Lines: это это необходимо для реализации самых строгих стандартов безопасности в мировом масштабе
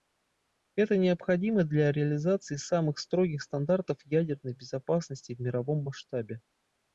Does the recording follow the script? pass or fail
fail